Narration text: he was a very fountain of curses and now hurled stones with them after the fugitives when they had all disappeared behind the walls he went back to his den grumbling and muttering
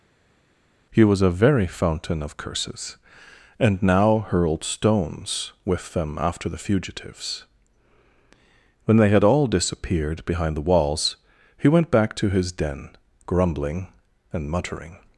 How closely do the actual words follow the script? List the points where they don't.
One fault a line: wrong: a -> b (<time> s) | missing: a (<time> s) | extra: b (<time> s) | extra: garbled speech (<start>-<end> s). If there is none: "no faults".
no faults